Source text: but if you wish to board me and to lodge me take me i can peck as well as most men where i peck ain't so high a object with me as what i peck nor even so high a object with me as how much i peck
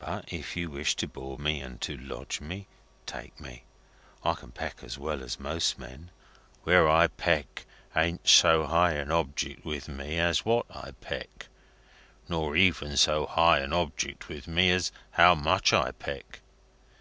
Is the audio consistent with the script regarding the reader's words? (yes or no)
yes